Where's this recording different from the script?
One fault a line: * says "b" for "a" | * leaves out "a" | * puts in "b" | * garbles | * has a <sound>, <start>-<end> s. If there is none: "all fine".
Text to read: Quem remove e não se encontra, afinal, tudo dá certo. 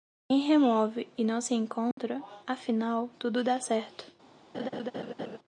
* has a dropout, 1.9-2.0 s
* has a laugh, 4.5-5.4 s